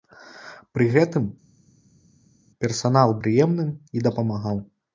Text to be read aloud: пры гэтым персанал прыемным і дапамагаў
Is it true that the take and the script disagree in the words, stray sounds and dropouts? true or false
false